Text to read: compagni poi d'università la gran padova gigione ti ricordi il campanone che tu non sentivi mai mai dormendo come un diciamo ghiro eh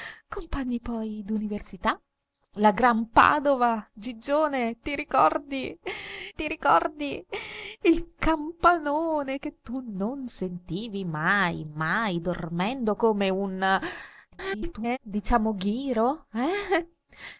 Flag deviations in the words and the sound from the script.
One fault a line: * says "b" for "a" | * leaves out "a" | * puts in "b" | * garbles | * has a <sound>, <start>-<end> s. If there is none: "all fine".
* puts in "ti ricordi"
* garbles